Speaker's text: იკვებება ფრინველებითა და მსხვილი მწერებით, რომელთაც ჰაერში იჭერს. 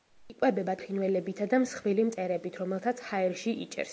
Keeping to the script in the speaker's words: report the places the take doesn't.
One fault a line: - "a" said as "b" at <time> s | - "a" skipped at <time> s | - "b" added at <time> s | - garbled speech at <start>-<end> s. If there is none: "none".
none